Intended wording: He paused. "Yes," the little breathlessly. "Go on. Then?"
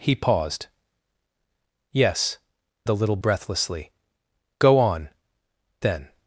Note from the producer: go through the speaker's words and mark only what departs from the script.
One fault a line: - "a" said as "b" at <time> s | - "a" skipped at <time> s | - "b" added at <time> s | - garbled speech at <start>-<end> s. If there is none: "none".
none